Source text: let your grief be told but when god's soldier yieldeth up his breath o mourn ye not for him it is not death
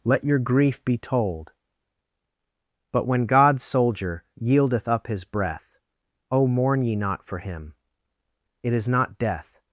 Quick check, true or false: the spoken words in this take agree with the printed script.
true